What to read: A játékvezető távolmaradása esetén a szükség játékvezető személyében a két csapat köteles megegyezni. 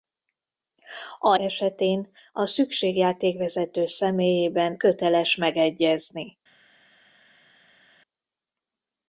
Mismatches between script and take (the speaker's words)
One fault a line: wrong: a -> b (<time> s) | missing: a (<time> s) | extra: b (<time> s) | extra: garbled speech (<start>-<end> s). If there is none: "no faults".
missing: játékvezető távolmaradása (1.4 s)
missing: a két csapat (4.8 s)